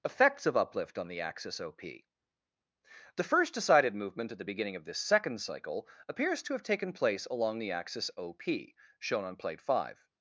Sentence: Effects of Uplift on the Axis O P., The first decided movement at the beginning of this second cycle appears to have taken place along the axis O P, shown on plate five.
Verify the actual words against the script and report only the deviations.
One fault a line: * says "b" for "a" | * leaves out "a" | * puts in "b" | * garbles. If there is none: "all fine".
all fine